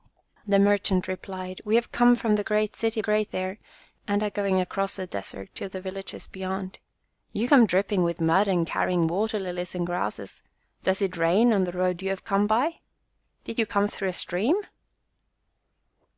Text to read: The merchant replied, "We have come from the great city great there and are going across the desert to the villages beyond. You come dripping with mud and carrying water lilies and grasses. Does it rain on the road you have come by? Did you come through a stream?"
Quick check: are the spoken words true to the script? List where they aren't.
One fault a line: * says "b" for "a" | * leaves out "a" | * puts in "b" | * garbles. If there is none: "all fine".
all fine